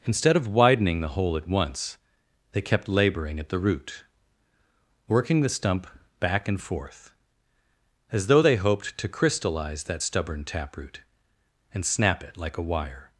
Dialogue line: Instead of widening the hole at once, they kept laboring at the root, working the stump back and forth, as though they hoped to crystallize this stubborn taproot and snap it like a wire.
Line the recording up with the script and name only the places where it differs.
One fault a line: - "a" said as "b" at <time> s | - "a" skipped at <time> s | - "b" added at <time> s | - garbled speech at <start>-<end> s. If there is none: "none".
- "this" said as "that" at 9.8 s